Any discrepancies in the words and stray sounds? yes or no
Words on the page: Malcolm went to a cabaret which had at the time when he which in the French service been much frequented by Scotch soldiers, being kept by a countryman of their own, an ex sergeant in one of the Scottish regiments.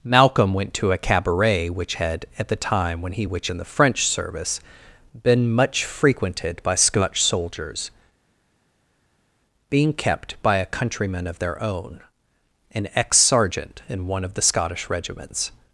no